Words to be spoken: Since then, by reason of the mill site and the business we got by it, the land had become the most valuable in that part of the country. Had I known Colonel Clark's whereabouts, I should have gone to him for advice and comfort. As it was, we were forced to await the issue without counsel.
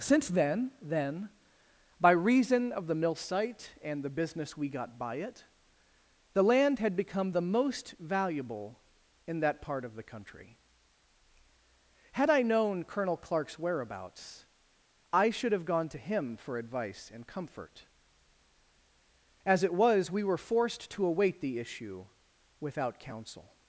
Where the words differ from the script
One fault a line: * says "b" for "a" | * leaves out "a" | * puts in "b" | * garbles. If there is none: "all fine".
* puts in "then"